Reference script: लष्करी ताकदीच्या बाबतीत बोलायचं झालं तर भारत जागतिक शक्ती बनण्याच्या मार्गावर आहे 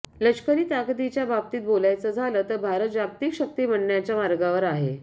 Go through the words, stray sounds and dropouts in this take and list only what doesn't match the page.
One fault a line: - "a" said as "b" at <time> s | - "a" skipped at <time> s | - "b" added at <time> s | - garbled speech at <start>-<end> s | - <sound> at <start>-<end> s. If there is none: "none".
none